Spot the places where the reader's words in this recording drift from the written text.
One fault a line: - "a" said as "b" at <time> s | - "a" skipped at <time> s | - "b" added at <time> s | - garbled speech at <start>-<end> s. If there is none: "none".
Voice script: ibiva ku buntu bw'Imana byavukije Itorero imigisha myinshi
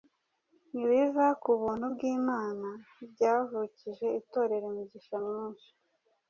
none